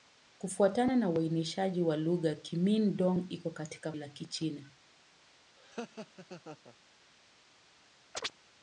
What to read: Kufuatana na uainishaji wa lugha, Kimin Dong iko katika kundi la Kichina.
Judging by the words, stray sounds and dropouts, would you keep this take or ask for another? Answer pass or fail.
fail